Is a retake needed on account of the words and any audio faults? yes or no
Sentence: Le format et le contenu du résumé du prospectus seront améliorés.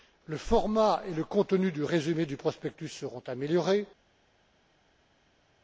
no